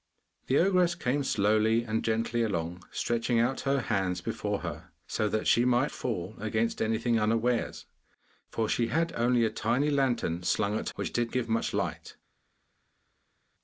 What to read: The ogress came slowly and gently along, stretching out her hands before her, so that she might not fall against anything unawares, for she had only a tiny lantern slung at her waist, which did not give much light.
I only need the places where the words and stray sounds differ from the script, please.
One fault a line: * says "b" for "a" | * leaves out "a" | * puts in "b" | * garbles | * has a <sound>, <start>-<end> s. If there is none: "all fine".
* leaves out "not"
* leaves out "her waist"
* leaves out "not"